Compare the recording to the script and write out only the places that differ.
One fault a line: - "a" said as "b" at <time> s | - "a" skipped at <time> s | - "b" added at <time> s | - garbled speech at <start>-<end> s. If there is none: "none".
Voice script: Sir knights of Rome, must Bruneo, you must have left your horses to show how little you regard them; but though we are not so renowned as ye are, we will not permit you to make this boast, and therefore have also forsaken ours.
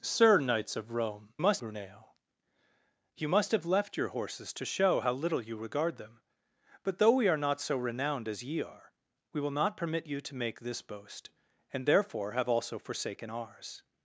none